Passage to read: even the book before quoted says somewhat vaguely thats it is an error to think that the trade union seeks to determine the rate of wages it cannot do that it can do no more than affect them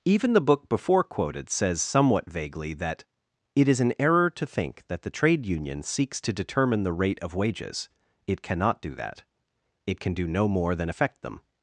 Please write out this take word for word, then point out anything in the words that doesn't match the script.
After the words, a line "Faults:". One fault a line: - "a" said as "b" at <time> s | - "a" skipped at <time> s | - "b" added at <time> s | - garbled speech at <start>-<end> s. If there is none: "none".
even the book before quoted says somewhat vaguely that it is an error to think that the trade union seeks to determine the rate of wages it cannot do that it can do no more than affect them
Faults:
- "thats" said as "that" at 2.7 s